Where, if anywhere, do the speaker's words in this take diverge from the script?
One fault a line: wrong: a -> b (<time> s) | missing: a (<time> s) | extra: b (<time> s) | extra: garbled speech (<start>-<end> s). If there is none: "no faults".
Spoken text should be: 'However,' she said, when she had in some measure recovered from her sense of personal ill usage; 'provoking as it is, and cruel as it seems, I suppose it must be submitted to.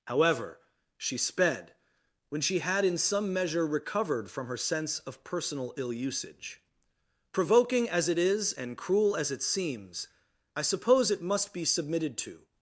wrong: said -> sped (1.2 s)